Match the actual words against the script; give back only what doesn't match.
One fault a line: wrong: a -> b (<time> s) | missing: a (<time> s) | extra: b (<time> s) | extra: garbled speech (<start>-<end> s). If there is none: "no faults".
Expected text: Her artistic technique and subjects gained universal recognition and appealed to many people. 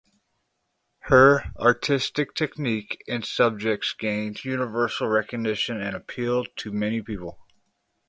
no faults